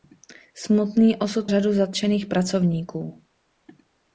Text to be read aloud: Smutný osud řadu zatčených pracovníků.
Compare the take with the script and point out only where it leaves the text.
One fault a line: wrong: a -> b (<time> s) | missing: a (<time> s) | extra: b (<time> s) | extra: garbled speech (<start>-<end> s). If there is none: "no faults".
no faults